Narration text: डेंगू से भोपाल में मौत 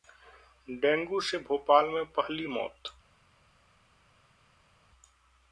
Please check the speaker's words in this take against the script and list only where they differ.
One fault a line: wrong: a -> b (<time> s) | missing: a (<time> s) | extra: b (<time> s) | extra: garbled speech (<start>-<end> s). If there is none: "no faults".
extra: पहली (2.1 s)